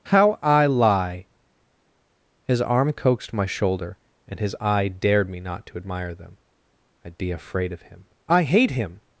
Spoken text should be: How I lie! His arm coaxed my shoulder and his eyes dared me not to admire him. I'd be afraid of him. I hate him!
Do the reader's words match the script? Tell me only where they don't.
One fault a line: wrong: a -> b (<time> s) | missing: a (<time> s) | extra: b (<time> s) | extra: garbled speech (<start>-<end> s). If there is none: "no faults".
wrong: eyes -> eye (4.6 s)
wrong: him -> them (6.2 s)